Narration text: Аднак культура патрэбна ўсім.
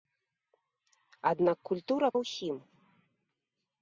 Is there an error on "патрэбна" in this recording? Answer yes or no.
yes